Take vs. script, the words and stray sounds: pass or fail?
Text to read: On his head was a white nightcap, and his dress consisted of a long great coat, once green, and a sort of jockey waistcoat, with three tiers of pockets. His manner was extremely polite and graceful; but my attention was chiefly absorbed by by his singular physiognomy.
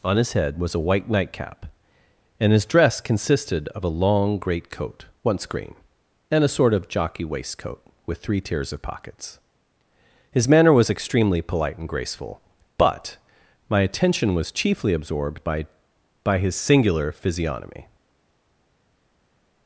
pass